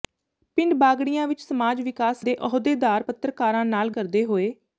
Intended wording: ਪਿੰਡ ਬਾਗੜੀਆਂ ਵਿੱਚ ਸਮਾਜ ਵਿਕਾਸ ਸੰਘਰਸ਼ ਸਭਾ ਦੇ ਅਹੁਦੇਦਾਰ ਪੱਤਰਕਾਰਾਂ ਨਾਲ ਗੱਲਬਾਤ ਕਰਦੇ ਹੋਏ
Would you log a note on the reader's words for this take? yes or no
yes